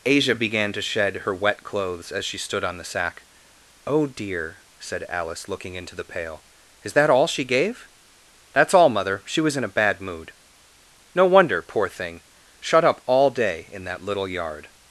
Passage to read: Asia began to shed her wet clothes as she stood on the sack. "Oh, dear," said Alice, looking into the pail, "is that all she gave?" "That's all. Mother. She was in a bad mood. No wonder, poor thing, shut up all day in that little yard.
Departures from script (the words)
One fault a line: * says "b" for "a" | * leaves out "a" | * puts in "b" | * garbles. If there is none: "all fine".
all fine